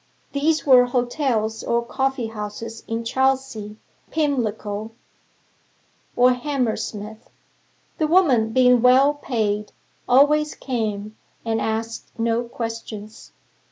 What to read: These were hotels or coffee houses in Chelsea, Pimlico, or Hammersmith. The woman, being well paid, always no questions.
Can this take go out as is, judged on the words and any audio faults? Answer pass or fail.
fail